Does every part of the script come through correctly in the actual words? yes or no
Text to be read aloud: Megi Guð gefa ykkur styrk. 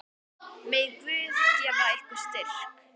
yes